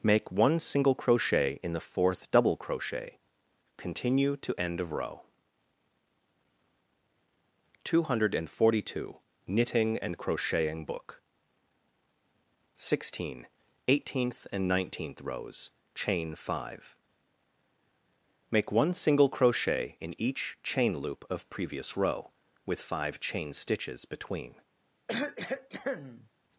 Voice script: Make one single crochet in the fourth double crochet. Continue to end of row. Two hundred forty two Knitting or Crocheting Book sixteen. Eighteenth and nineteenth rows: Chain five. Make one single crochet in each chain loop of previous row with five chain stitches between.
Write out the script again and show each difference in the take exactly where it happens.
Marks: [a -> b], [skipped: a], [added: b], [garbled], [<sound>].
Make one single crochet in the fourth double crochet. Continue to end of row. Two hundred forty two Knitting [or -> and] Crocheting Book sixteen. Eighteenth and nineteenth rows: Chain five. Make one single crochet in each chain loop of previous row with five chain stitches between. [cough]